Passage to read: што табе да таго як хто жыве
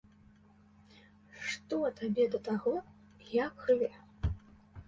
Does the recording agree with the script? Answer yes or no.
no